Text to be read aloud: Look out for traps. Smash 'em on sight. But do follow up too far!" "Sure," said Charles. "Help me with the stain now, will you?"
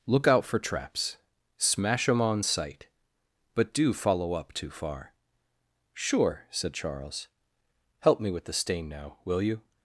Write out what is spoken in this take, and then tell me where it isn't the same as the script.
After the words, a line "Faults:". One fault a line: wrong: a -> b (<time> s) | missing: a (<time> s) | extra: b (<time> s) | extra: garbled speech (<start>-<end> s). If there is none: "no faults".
Look out for traps. Smash 'em on sight. But do follow up too far!" "Sure," said Charles. "Help me with the stain now, will you?"
Faults:
no faults